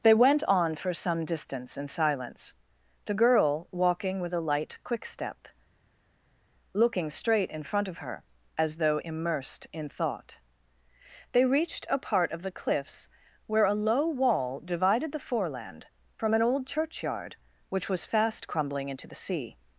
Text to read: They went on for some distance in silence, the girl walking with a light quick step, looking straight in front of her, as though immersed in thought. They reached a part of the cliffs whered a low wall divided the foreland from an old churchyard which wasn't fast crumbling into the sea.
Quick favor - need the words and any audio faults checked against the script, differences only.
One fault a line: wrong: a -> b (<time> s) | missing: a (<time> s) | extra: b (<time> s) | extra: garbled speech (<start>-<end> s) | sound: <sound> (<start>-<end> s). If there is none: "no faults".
wrong: whered -> where (13.5 s)
wrong: wasn't -> was (17.9 s)